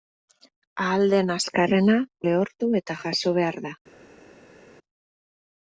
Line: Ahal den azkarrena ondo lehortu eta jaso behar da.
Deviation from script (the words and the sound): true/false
true